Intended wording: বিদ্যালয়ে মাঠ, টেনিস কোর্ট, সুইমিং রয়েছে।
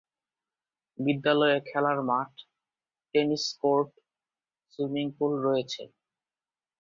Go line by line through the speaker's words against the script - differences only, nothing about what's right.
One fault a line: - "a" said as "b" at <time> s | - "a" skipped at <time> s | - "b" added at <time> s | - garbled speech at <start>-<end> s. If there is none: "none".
- "খেলার" added at 1.7 s
- "পুল" added at 5.2 s